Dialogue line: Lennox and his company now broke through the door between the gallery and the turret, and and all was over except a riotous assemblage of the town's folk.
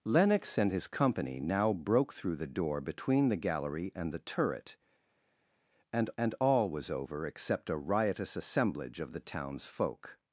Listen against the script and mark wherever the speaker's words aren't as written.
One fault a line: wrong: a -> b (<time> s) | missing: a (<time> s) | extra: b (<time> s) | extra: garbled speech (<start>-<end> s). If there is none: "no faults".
no faults